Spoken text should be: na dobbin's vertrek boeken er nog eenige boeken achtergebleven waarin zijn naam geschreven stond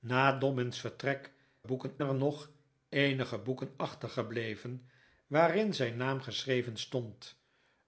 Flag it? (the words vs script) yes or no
no